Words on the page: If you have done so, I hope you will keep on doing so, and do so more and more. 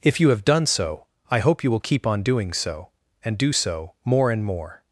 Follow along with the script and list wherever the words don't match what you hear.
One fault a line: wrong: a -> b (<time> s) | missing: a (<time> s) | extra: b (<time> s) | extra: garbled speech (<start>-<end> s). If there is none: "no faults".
no faults